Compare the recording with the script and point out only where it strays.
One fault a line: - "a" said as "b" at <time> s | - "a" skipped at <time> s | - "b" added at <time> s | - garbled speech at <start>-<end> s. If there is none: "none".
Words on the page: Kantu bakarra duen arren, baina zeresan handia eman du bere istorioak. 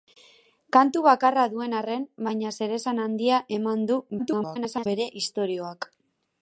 - garbled speech at 4.2-4.9 s